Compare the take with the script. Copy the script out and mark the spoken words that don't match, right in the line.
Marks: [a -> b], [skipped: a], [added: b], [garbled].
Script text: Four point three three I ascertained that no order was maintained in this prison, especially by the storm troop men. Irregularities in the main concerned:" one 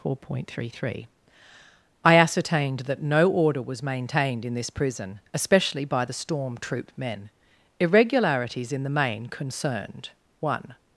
Four point three three I ascertained that no order was maintained in this prison, especially by the storm troop men. Irregularities in the main concerned:" one